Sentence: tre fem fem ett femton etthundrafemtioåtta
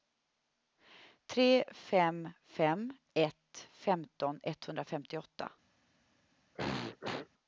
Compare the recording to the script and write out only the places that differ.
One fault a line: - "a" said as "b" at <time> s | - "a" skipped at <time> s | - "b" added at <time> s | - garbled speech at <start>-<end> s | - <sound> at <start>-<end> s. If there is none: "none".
- throat clearing at 6.5-7.3 s